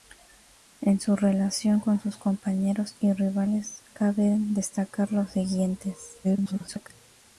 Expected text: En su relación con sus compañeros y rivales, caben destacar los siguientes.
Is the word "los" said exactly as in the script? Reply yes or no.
yes